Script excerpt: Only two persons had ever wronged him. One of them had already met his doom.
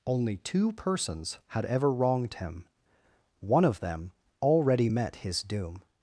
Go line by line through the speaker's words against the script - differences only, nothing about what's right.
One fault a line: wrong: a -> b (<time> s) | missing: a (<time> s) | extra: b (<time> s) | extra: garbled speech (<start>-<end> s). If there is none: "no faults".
missing: had (4.1 s)